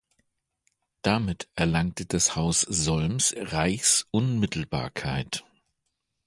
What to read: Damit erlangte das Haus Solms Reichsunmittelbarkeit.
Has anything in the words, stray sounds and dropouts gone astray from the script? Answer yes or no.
no